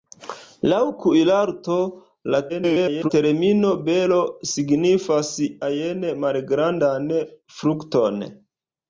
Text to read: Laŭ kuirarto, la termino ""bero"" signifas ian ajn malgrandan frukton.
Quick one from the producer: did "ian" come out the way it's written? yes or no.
no